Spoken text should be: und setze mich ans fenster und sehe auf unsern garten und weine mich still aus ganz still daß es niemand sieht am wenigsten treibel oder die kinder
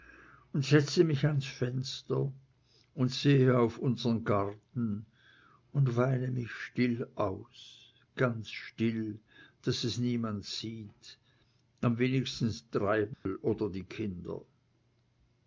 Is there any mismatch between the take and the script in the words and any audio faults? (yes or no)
yes